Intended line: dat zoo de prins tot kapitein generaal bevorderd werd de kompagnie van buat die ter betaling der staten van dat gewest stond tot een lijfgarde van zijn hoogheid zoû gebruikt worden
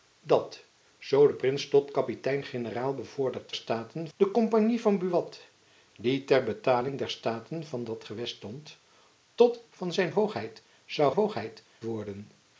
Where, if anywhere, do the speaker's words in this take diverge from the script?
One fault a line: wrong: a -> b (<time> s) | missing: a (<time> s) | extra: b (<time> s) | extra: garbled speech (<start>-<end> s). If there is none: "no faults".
wrong: werd -> staten (3.5 s)
missing: een lijfgarde (9.6 s)
wrong: gebruikt -> hoogheid (11.1 s)